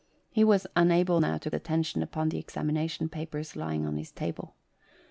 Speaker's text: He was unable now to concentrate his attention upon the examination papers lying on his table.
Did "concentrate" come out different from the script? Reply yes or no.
yes